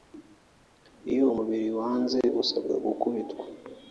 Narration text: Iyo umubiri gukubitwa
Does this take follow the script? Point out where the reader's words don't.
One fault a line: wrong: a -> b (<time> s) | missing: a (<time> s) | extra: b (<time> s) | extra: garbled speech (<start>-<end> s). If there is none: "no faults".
extra: wanze usabwa (1.8 s)